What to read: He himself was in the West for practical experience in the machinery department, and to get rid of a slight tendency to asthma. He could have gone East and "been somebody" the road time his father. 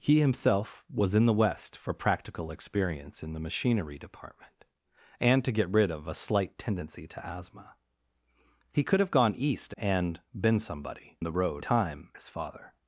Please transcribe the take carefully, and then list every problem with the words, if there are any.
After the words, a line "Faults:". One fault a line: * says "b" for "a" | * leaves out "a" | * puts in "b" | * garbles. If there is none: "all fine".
He himself was in the West for practical experience in the machinery department, and to get rid of a slight tendency to asthma. He could have gone East and "been somebody" the road time his father.
Faults:
all fine